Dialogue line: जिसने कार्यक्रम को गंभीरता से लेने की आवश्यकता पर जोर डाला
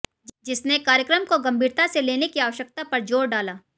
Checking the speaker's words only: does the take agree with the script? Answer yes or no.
yes